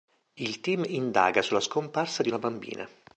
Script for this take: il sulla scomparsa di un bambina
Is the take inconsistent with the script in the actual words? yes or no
yes